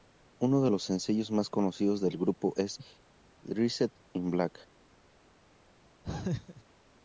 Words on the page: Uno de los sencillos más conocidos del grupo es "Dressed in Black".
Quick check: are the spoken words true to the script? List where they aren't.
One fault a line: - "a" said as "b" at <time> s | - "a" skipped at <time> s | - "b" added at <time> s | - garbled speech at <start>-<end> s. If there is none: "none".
none